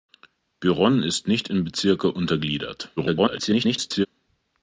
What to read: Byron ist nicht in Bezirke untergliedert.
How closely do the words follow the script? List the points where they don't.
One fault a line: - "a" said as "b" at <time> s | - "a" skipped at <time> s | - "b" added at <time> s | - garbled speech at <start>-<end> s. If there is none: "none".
- garbled speech at 3.0-4.1 s